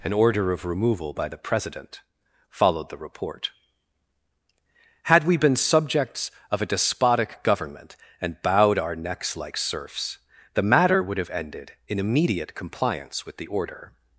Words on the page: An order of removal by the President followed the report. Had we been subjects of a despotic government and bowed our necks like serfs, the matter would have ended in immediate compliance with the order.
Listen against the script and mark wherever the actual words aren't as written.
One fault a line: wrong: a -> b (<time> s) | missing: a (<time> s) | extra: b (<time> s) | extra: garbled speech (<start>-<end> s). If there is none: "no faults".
no faults